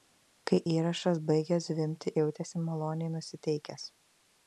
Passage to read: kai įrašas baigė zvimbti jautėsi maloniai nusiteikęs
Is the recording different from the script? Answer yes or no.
no